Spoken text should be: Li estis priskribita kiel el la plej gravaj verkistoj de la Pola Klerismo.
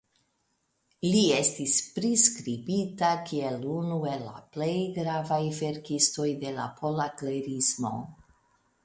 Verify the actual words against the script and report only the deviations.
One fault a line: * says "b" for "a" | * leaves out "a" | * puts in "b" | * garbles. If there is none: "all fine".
* puts in "unu"